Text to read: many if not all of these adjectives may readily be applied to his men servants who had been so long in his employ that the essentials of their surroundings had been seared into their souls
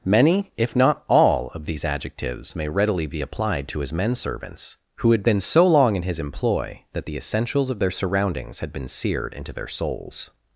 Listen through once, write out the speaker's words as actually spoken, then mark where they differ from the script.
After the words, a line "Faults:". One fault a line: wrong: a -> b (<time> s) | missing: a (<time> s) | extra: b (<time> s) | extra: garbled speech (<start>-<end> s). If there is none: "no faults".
many if not all of these adjectives may readily be applied to his men servants who had been so long in his employ that the essentials of their surroundings had been seared into their souls
Faults:
no faults